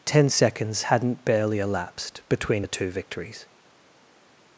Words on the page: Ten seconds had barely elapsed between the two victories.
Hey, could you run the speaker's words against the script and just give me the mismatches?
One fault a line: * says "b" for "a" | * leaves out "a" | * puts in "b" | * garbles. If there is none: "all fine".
* says "hadn't" for "had"